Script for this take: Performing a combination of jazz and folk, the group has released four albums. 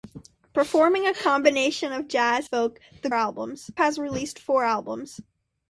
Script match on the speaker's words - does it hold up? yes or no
no